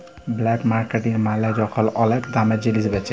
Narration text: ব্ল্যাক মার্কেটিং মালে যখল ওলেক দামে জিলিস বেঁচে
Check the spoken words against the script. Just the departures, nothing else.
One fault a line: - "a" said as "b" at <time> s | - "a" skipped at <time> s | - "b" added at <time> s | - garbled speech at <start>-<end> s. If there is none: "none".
none